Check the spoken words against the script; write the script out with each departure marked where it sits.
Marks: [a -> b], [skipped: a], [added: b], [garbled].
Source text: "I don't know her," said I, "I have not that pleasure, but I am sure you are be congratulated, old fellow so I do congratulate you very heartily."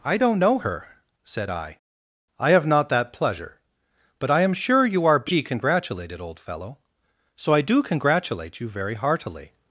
"I don't know her," said I, "I have not that pleasure, but I am sure you are be congratulated, old fellow so I do congratulate you very heartily."